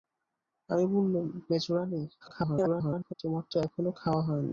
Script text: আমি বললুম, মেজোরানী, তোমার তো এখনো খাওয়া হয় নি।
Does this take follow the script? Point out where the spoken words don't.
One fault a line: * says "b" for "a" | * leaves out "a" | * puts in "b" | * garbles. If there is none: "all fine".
* garbles